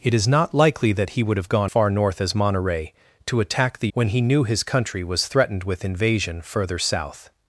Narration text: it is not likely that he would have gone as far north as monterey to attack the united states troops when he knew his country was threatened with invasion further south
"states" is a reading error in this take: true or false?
true